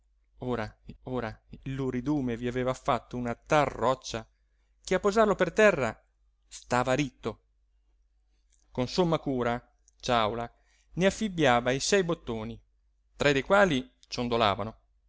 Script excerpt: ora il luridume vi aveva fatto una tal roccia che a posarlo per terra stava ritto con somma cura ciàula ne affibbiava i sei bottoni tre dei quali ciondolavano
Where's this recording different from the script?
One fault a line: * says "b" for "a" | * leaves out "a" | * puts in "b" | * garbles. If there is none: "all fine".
* puts in "ora"